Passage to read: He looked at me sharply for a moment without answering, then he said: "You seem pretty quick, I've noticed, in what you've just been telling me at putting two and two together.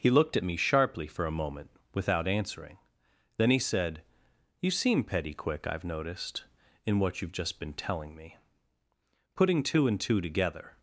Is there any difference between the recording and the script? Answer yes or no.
yes